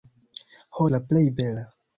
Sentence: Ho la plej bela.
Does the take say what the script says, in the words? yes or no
yes